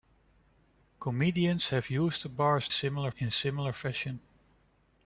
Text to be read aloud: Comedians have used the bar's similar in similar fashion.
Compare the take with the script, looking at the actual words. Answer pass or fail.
pass